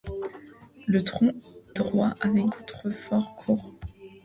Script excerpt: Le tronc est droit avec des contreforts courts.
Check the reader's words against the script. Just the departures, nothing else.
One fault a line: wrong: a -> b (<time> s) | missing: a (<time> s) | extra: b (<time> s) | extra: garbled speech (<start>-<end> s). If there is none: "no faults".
missing: est (1.3 s)
missing: des (2.5 s)